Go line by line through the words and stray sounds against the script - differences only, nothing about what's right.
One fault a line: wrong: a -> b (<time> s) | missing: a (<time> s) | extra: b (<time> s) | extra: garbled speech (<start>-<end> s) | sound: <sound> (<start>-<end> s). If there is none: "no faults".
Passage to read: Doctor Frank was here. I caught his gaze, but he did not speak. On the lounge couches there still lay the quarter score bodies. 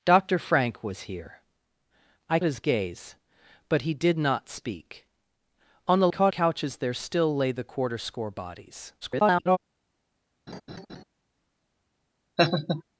missing: caught (2.4 s)
wrong: lounge -> caught (6.1 s)
extra: garbled speech (9.0-9.6 s)
sound: laugh (10.5-11.0 s)
sound: laugh (12.4-12.8 s)